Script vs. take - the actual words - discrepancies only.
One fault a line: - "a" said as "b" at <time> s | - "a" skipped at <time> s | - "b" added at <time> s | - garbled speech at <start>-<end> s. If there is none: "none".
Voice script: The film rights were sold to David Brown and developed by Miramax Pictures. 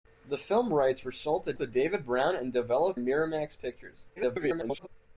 - "to" added at 1.6 s
- "by" skipped at 3.0 s
- garbled speech at 4.2-4.9 s